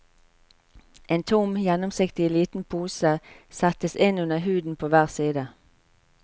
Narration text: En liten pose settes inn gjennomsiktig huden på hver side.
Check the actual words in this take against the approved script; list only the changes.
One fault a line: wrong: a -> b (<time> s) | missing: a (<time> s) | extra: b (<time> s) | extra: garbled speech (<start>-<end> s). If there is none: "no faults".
extra: tom gjennomsiktig (1.2 s)
wrong: gjennomsiktig -> under (4.2 s)